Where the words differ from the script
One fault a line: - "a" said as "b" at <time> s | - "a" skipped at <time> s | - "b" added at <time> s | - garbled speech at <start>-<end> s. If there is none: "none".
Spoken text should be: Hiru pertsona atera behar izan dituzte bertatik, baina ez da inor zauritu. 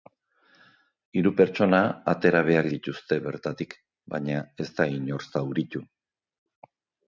- "izan" skipped at 2.7 s